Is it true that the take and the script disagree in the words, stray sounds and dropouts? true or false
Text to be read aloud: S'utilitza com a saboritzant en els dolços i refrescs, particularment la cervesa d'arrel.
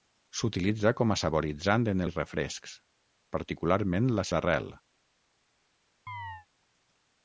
true